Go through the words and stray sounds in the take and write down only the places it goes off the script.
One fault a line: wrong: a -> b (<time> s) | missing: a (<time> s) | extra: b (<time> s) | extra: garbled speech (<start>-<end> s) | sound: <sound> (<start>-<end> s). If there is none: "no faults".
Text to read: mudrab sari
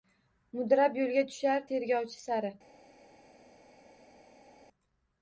extra: yo'lga tushar tergovchi (1.0 s)